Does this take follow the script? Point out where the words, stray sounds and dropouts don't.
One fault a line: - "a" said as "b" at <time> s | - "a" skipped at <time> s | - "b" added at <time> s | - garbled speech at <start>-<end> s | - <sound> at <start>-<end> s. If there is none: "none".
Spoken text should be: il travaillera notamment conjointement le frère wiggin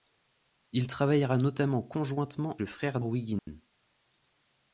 - dropout at 3.4-3.5 s